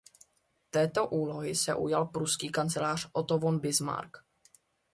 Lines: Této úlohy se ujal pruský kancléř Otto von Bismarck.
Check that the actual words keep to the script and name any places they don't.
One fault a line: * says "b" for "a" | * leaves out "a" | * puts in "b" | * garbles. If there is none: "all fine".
all fine